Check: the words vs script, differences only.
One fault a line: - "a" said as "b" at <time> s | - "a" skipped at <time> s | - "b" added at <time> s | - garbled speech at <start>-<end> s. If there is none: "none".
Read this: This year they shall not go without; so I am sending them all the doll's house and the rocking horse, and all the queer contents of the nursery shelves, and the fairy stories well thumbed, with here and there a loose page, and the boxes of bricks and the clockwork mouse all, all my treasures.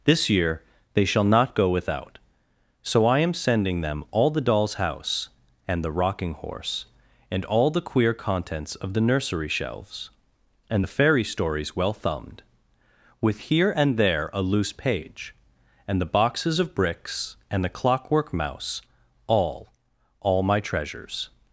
none